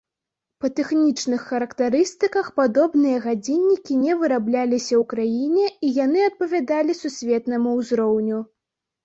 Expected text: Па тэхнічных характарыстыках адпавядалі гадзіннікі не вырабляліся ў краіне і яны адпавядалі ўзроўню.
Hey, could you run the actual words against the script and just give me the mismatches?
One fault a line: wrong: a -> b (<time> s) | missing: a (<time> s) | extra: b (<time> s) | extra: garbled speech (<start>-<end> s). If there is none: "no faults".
wrong: адпавядалі -> падобныя (2.6 s)
extra: сусветнаму (7.0 s)